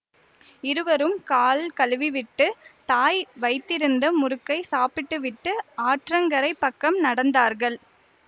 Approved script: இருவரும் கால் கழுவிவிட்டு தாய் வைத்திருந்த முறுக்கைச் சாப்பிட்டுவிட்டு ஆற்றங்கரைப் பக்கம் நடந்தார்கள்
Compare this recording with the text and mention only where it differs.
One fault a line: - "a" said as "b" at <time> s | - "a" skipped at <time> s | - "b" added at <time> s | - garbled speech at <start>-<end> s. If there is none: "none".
none